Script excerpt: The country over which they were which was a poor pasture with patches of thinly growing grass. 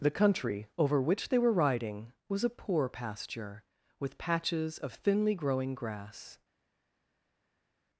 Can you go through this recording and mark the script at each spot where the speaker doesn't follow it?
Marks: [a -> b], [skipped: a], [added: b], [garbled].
The country over which they were [which -> riding] was a poor pasture with patches of thinly growing grass.